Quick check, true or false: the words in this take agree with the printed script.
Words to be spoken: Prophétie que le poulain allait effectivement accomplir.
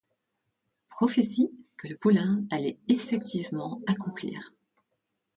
true